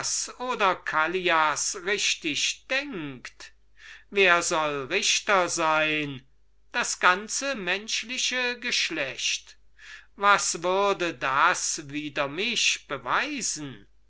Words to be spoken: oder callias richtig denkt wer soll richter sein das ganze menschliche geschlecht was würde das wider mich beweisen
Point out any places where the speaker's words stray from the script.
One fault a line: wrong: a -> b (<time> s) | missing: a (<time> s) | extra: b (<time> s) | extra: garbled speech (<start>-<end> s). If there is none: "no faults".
no faults